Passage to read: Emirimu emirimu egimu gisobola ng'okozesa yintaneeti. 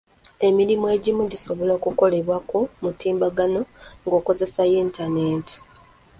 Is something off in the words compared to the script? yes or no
yes